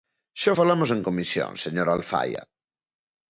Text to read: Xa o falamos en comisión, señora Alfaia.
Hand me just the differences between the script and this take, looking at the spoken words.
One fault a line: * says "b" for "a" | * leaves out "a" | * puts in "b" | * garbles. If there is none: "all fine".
all fine